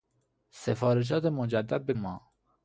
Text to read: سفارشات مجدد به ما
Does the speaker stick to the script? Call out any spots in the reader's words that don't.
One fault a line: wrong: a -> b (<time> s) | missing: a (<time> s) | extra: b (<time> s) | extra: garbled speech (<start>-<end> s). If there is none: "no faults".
no faults